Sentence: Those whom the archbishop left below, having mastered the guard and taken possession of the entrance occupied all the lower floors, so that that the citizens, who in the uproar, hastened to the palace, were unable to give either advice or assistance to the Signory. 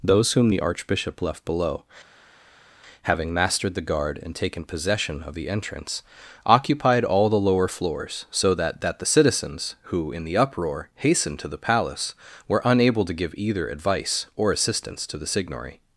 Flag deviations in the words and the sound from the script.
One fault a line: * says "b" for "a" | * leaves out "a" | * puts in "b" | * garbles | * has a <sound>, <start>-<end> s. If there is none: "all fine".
all fine